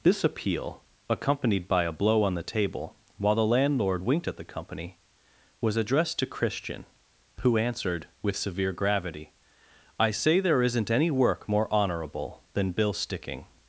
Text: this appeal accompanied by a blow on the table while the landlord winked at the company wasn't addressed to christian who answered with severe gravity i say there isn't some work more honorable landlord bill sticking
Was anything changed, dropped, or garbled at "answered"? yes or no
no